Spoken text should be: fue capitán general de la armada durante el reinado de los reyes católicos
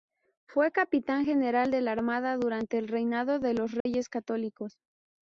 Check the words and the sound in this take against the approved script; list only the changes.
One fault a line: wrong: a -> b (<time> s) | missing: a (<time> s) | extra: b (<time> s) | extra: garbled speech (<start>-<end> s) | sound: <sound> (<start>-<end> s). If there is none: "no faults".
sound: dropout (3.8-3.9 s)